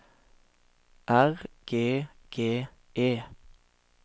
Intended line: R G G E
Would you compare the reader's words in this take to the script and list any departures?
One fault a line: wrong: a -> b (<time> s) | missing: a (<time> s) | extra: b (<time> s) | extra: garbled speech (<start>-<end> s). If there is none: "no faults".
no faults